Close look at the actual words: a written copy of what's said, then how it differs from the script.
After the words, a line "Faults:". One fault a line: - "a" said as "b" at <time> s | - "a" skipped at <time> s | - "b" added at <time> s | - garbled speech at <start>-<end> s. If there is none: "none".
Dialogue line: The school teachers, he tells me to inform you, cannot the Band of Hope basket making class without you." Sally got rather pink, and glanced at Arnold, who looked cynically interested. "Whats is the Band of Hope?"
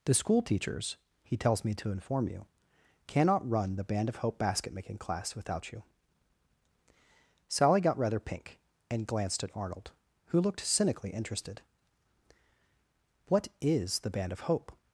The school teachers, he tells me to inform you, cannot run the Band of Hope basket making class without you." Sally got rather pink, and glanced at Arnold, who looked cynically interested. "What is the Band of Hope?"
Faults:
- "run" added at 3.5 s
- "Whats" said as "What" at 13.3 s